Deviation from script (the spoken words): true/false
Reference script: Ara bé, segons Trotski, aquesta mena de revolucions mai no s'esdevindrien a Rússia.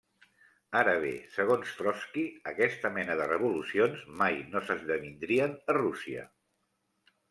false